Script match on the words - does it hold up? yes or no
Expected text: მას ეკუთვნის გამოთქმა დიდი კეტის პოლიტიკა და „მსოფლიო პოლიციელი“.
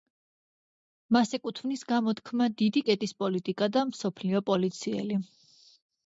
yes